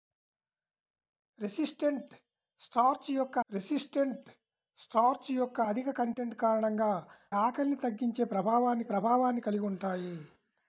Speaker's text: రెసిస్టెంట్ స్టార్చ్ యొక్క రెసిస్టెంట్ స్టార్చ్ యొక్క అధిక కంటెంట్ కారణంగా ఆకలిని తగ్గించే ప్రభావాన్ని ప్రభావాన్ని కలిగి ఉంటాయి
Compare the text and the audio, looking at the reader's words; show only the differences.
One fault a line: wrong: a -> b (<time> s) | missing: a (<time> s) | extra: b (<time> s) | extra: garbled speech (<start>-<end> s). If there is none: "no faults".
no faults